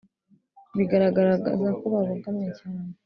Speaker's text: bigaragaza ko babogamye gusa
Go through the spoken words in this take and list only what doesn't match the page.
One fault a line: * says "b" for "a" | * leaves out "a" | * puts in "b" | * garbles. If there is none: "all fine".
* says "cyane" for "gusa"